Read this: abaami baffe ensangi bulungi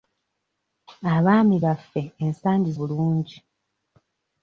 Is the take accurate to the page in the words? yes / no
yes